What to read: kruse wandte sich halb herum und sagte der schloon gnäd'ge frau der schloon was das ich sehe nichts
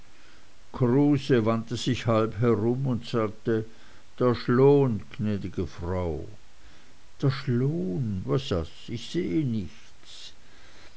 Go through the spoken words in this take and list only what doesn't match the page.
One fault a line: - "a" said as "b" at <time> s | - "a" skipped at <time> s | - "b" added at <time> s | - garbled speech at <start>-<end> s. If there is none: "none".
none